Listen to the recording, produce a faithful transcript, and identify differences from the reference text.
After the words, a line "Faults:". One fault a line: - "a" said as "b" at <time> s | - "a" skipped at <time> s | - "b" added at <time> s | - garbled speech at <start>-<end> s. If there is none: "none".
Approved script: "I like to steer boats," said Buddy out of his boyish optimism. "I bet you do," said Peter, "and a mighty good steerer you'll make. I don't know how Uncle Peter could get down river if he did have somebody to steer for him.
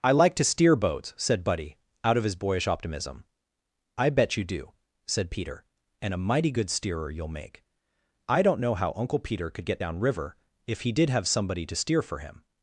"I like to steer boats," said Buddy out of his boyish optimism. "I bet you do," said Peter, "and a mighty good steerer you'll make. I don't know how Uncle Peter could get down river if he did have somebody to steer for him.
Faults:
none